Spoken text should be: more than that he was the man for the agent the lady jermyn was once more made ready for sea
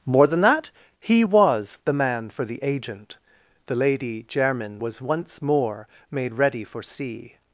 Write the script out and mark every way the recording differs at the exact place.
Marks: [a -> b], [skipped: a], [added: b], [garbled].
more than that he was the man for the agent the lady jermyn was once more made ready for sea